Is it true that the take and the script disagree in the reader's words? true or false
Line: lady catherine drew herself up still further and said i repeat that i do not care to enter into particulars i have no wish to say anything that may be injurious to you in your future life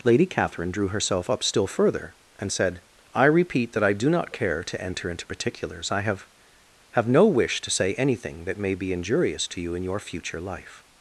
true